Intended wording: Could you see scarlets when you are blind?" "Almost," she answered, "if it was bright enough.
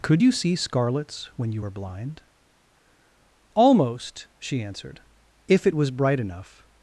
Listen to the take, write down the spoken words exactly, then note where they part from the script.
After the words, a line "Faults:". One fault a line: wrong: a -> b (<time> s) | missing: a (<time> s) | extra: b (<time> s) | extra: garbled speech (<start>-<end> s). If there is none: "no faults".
Could you see scarlets when you were blind?" "Almost," she answered, "if it was bright enough.
Faults:
wrong: are -> were (1.6 s)